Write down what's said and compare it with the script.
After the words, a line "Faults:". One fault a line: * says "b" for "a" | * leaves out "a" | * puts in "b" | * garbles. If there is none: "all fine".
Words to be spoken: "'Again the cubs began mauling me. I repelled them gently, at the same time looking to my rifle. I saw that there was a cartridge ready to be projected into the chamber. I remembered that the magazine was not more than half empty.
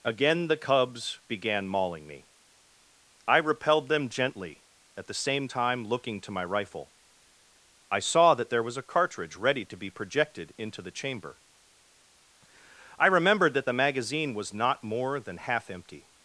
"'Again the cubs began mauling me. I repelled them gently, at the same time looking to my rifle. I saw that there was a cartridge ready to be projected into the chamber. I remembered that the magazine was not more than half empty.
Faults:
all fine